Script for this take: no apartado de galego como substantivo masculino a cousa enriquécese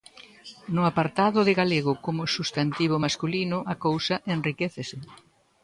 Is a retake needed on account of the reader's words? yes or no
no